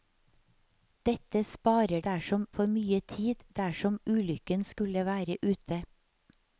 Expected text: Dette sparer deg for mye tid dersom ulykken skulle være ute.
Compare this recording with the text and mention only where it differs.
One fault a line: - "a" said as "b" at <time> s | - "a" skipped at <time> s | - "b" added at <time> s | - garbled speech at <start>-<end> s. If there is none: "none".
- "deg" said as "dersom" at 2.1 s